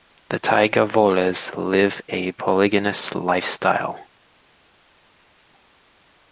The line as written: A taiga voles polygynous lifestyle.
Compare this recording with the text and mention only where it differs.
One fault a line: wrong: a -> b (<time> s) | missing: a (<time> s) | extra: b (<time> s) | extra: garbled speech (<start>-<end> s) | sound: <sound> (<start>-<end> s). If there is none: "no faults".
wrong: A -> The (0.3 s)
extra: live a (1.6 s)